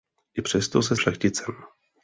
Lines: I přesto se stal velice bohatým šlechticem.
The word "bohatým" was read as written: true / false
false